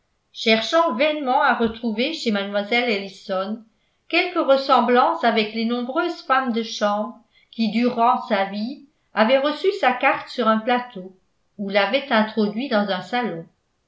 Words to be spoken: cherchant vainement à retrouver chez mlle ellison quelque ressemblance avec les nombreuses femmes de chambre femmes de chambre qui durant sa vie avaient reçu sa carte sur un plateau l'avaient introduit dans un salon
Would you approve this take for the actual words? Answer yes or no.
no